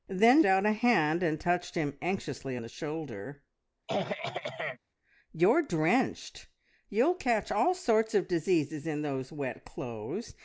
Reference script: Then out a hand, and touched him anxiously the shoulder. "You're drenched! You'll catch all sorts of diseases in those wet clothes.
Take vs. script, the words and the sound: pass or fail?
fail